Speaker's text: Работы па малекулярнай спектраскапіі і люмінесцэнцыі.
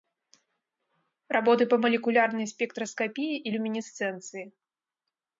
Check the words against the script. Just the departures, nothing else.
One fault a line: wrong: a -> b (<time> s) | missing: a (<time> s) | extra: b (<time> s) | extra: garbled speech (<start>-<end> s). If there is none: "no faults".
no faults